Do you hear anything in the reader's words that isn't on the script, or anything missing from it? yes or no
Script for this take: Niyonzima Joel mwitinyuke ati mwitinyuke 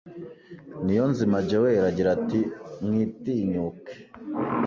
yes